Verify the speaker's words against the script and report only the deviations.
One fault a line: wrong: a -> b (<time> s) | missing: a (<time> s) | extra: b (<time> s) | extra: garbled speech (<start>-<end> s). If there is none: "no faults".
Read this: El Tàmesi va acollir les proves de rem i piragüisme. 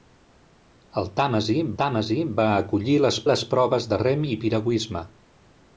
extra: Tàmesi (1.8 s)
extra: les (3.3 s)